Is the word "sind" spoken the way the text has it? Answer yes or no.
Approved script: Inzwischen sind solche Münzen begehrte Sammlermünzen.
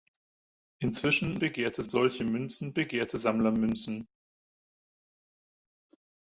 no